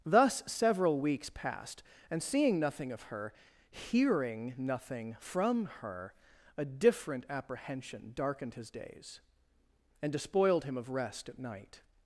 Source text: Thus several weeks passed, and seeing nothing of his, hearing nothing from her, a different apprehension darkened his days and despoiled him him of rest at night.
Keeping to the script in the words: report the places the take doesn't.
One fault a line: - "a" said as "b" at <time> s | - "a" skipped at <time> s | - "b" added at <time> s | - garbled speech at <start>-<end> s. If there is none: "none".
- "his" said as "her" at 3.0 s
- "him" skipped at 10.8 s